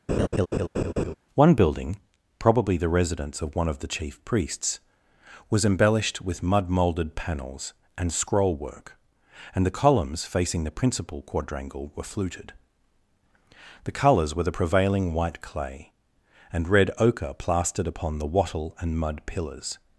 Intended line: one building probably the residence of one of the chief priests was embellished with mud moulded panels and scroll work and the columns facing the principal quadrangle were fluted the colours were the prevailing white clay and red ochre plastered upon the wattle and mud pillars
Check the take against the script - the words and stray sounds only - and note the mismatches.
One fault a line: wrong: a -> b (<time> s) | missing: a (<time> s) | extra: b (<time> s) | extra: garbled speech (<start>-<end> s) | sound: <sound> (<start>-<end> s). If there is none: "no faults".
sound: laugh (0.1-1.1 s)